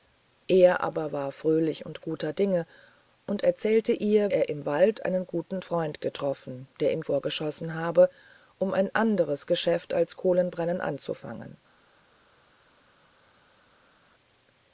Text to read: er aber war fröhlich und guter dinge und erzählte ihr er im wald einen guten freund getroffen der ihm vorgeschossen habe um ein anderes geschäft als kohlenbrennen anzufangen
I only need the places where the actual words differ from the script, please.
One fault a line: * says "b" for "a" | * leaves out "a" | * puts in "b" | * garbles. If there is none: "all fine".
all fine